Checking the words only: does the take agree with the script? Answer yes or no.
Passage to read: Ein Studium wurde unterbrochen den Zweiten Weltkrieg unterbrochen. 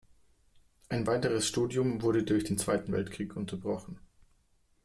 no